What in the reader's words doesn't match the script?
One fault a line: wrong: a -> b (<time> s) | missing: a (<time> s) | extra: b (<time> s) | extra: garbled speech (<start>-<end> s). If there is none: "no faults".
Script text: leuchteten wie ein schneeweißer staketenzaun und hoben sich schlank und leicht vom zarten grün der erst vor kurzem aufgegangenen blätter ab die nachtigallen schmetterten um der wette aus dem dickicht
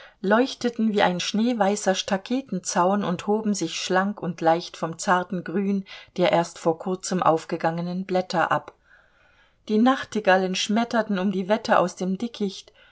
wrong: der -> die (11.3 s)